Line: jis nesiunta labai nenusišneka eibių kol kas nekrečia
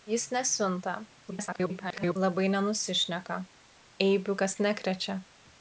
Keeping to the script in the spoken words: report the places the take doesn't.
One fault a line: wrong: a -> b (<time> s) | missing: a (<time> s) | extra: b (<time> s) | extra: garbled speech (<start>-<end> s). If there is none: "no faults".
extra: garbled speech (1.3-2.2 s)
missing: kol (4.3 s)